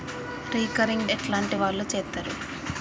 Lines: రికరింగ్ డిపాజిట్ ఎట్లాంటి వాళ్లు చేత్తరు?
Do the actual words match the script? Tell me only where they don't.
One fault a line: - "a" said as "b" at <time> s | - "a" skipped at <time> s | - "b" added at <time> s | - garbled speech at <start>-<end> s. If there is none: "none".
- "డిపాజిట్" skipped at 1.1 s